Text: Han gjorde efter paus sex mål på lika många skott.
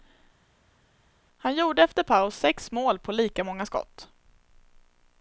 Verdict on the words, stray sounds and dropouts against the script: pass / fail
pass